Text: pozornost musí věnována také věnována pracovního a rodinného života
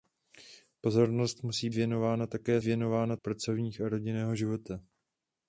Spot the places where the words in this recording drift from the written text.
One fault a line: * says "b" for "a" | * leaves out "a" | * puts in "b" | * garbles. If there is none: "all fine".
all fine